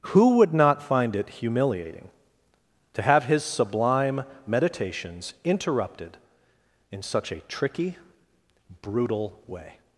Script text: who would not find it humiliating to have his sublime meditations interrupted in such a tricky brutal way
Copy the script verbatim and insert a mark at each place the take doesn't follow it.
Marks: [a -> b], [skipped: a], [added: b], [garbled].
who would not find it humiliating to have his sublime meditations interrupted in such a tricky brutal way